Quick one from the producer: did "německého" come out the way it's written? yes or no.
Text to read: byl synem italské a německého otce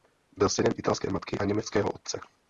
yes